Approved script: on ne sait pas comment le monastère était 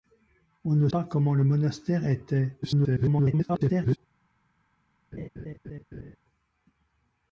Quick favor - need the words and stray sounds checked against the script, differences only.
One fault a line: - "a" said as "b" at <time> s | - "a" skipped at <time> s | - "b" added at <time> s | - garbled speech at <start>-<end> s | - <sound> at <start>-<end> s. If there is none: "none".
- "sait" skipped at 0.9 s
- garbled speech at 2.6-4.0 s
- laugh at 5.1-6.2 s